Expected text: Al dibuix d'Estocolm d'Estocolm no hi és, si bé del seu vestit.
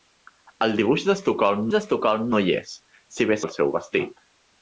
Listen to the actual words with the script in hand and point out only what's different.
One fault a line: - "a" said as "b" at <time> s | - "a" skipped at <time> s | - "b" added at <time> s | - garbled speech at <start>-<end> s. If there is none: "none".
none